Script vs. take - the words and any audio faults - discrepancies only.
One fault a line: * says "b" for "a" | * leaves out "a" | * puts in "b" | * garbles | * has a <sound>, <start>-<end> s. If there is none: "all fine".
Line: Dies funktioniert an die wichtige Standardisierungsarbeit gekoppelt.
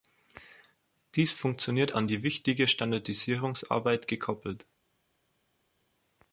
all fine